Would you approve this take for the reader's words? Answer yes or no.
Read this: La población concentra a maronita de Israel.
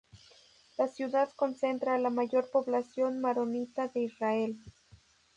no